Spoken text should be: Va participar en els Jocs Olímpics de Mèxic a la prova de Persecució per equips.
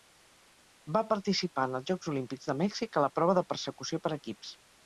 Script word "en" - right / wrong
right